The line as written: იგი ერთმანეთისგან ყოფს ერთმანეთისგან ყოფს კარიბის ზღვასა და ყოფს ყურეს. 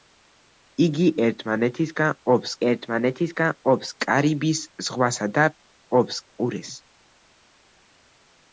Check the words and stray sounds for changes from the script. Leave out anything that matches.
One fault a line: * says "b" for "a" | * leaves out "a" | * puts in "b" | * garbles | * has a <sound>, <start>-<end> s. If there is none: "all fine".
all fine